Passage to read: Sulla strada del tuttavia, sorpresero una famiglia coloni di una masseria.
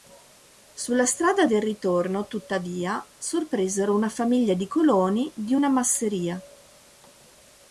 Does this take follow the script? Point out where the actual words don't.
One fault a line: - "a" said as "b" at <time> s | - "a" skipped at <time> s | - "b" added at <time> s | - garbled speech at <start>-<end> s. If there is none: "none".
- "ritorno" added at 1.6 s
- "di" added at 4.5 s